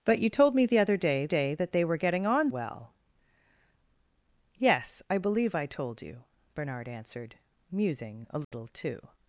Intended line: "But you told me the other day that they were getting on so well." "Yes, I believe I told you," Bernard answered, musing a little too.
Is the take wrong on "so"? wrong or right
wrong